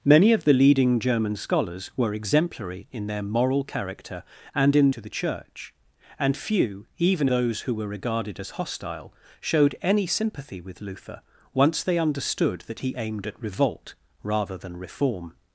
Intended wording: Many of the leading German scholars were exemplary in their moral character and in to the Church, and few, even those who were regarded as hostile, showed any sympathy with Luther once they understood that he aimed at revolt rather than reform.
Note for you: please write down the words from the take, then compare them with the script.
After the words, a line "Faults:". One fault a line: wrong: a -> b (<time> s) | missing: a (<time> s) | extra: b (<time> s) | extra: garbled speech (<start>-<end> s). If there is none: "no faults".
Many of the leading German scholars were exemplary in their moral character and in to the Church, and few, even those who were regarded as hostile, showed any sympathy with Luther once they understood that he aimed at revolt rather than reform.
Faults:
no faults